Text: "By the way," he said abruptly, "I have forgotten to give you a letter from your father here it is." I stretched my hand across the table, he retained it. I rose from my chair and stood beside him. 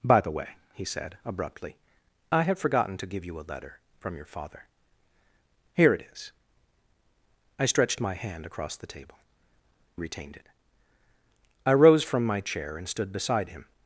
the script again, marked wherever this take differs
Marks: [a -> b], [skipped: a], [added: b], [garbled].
"By the way," he said abruptly, "I have forgotten to give you a letter from your father here it is." I stretched my hand across the table, [skipped: he] retained it. I rose from my chair and stood beside him.